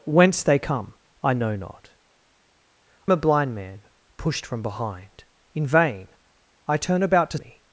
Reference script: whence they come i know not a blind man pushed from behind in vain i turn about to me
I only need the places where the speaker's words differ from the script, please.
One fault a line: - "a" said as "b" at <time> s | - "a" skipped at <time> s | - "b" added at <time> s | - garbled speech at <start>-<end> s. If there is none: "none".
none